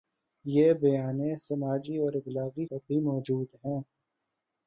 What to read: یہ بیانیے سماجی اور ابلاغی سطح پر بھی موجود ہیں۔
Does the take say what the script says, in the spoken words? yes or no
no